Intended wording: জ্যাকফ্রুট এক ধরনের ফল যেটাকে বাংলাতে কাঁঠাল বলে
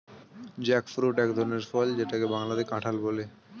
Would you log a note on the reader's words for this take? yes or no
no